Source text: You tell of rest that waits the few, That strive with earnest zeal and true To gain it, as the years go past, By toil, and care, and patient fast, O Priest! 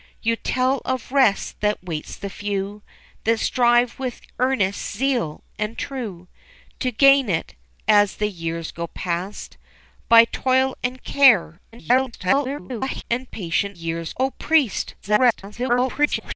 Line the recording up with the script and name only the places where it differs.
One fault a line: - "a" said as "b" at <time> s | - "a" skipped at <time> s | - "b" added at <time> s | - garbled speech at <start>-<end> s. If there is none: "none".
- garbled speech at 11.7-13.0 s
- "fast" said as "years" at 13.7 s
- garbled speech at 15.0-16.4 s